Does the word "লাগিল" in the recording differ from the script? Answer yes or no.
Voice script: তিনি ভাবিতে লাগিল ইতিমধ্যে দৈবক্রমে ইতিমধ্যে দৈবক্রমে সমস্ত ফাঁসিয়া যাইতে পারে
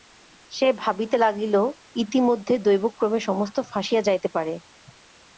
no